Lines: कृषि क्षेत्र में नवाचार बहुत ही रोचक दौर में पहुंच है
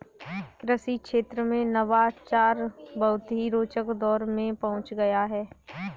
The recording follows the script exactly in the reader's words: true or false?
false